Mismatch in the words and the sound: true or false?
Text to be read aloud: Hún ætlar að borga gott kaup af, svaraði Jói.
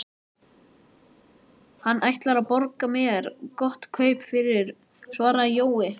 true